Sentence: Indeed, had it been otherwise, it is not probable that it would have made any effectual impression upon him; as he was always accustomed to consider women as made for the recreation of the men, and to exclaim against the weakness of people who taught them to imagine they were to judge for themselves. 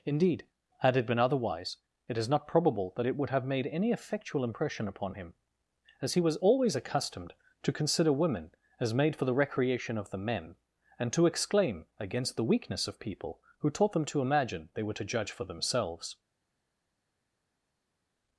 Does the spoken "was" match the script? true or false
true